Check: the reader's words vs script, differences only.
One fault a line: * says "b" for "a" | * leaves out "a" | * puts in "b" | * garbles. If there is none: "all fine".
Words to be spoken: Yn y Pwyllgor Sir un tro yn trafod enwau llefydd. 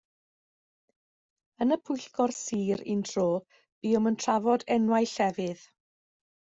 * puts in "buom"